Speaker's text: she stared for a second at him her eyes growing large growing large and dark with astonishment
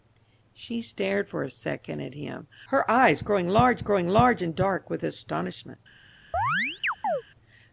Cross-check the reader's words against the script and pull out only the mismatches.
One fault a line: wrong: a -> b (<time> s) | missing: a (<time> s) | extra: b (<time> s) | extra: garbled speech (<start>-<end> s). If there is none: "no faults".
no faults